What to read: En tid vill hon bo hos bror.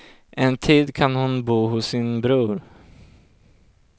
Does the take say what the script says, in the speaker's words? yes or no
no